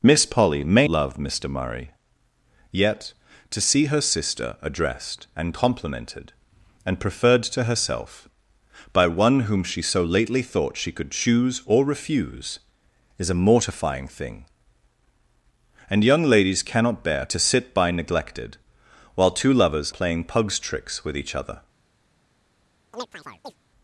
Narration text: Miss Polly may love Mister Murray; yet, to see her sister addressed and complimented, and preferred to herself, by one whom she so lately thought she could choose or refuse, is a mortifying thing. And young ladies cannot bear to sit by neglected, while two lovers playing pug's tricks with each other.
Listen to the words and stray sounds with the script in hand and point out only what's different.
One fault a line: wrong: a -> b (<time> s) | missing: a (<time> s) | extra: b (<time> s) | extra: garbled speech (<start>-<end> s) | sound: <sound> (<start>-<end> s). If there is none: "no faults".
sound: chirp (22.9-23.6 s)